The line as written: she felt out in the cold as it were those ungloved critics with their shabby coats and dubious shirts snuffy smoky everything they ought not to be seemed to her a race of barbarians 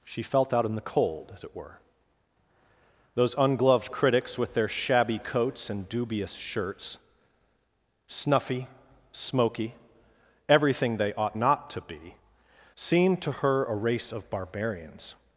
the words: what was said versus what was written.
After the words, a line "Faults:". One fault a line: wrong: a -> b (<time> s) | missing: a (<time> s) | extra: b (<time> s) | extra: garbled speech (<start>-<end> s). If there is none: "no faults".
she felt out in the cold as it were those ungloved critics with their shabby coats and dubious shirts snuffy smoky everything they ought not to be seemed to her a race of barbarians
Faults:
no faults